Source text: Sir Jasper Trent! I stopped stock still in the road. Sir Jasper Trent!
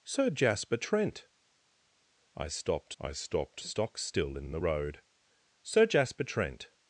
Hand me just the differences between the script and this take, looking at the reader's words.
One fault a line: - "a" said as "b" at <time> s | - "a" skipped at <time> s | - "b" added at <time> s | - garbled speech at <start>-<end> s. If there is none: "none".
- "I stopped" added at 3.0 s
- "in" added at 4.4 s